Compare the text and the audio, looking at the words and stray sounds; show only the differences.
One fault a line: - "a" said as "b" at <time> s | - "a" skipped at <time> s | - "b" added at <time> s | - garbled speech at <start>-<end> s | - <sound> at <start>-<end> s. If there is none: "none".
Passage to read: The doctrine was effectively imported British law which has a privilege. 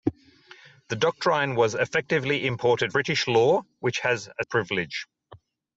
none